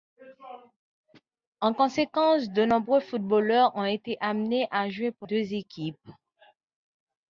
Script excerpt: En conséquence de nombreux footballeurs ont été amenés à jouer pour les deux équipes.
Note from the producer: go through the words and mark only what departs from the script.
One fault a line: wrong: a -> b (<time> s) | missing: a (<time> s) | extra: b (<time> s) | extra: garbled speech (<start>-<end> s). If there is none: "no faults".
missing: les (5.3 s)